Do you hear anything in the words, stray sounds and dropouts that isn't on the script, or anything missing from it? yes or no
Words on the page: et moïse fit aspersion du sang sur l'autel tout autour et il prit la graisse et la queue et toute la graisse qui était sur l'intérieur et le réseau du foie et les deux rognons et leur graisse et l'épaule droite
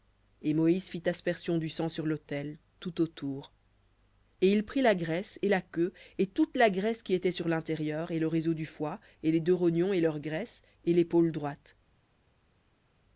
no